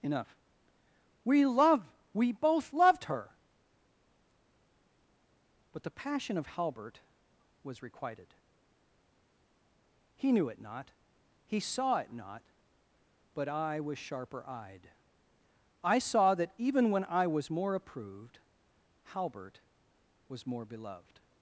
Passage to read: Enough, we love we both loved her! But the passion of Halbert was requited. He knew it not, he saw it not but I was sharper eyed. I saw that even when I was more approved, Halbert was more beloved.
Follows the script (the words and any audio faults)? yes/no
yes